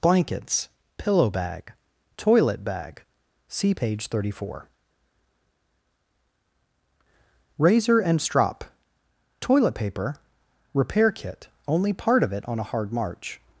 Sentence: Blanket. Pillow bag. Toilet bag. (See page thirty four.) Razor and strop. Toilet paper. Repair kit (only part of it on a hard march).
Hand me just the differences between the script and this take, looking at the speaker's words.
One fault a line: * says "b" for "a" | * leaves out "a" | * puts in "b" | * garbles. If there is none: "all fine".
* says "Blankets" for "Blanket"